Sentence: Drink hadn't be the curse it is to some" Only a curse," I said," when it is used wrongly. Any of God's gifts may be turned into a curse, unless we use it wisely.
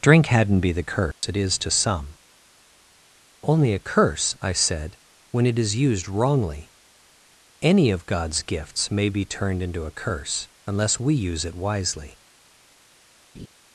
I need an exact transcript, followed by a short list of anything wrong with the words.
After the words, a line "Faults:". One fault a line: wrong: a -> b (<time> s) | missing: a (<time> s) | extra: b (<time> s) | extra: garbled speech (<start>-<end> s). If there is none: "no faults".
Drink hadn't be the curse it is to some" Only a curse," I said," when it is used wrongly. Any of God's gifts may be turned into a curse, unless we use it wisely.
Faults:
no faults